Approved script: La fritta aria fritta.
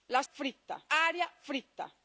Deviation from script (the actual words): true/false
false